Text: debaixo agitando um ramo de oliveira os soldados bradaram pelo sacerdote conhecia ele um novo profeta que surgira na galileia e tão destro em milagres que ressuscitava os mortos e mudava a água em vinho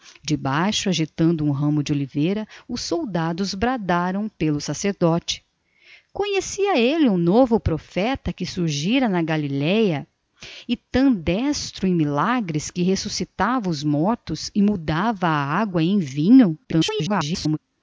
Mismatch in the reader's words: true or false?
true